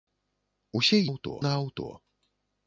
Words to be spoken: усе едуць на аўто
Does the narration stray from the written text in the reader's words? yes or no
yes